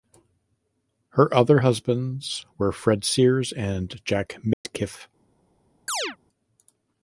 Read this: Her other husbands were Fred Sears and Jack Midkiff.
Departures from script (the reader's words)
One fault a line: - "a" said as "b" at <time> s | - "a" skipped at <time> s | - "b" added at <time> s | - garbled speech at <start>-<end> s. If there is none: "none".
none